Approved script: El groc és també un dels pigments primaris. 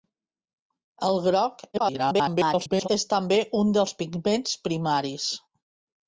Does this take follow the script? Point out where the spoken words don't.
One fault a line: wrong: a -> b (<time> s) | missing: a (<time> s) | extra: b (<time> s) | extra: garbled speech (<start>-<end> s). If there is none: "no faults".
extra: garbled speech (1.7-2.9 s)